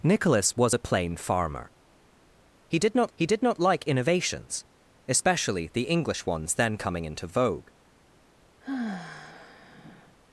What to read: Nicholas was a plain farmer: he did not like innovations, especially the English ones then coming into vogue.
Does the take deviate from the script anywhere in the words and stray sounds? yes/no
yes